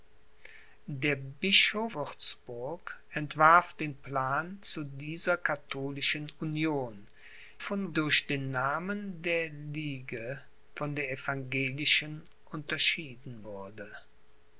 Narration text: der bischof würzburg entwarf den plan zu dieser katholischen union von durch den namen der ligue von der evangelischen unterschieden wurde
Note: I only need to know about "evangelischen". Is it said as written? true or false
true